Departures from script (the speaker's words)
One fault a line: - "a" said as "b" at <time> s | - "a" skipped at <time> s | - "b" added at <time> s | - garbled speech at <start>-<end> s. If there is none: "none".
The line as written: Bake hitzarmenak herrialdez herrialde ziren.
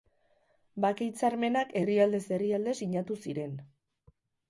- "sinatu" added at 2.8 s